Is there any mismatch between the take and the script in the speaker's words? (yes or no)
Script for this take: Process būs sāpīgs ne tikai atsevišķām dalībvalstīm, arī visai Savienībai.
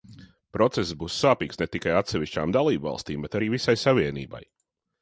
yes